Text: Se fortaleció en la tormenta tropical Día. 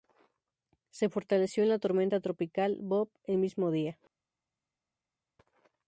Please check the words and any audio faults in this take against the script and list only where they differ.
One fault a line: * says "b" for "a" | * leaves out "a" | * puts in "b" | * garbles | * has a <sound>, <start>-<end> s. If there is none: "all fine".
* puts in "Bob el mismo"